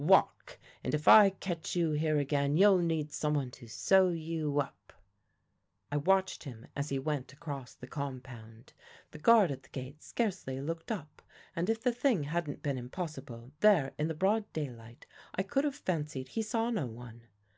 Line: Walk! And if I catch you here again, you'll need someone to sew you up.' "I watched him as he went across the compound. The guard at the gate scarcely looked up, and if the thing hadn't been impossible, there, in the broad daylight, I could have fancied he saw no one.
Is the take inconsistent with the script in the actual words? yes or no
no